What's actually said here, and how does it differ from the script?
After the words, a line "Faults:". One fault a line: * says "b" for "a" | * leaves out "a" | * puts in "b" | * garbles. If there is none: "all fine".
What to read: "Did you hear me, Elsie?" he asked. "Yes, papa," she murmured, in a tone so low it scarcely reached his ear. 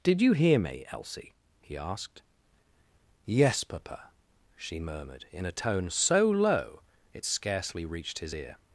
"Did you hear me, Elsie?" he asked. "Yes, papa," she murmured, in a tone so low it scarcely reached his ear.
Faults:
all fine